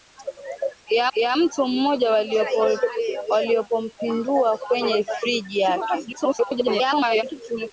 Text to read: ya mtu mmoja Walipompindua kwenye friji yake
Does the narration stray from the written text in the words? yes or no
yes